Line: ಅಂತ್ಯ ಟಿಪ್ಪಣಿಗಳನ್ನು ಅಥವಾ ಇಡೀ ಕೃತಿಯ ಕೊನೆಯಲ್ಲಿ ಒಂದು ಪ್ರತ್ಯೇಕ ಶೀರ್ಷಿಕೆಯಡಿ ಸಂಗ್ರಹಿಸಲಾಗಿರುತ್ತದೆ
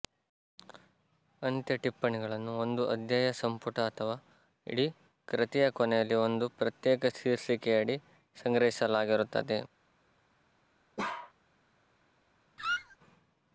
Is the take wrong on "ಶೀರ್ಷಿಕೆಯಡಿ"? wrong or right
right